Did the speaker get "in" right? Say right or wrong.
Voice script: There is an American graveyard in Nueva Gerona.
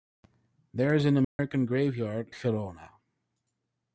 wrong